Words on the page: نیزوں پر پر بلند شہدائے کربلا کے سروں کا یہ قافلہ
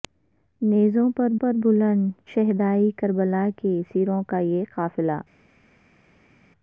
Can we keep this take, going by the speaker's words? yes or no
yes